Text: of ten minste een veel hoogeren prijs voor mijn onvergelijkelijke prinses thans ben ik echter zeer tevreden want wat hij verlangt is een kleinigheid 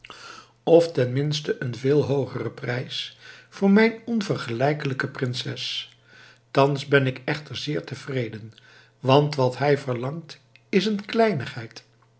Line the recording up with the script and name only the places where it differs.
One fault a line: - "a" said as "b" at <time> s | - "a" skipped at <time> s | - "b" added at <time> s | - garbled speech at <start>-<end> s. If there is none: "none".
none